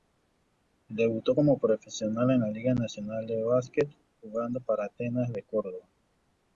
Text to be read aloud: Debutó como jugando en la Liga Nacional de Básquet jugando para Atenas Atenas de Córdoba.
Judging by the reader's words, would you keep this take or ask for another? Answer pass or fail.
fail